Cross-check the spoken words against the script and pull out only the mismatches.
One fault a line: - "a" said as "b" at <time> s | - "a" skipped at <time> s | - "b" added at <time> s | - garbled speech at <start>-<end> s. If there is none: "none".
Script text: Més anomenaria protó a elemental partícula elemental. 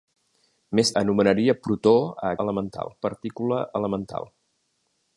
none